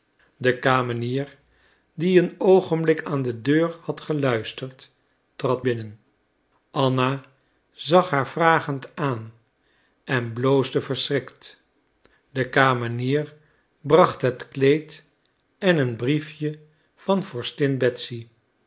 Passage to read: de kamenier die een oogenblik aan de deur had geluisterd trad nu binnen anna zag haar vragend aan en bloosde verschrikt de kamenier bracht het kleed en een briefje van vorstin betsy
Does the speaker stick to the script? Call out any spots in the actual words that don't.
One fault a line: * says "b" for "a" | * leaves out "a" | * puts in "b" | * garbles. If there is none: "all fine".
* leaves out "nu"